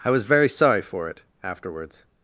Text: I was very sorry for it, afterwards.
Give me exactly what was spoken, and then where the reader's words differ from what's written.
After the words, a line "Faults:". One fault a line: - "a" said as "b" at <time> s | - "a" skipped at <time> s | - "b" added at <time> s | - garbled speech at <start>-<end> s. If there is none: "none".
I was very sorry for it, afterwards.
Faults:
none